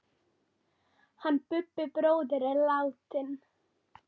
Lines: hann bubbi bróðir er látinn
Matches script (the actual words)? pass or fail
pass